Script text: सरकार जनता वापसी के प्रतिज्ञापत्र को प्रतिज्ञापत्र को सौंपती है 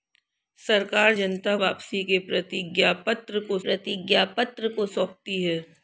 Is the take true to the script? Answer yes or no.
yes